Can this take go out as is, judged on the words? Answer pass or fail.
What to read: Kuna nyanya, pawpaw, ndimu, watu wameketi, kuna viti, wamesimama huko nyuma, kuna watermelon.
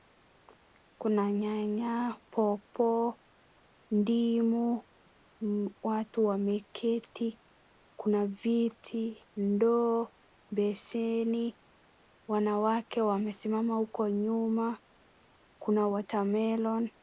fail